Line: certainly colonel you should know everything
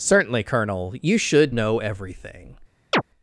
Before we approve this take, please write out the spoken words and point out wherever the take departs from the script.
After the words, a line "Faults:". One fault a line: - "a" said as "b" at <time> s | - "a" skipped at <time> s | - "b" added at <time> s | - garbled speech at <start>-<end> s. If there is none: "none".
certainly colonel you should know everything
Faults:
none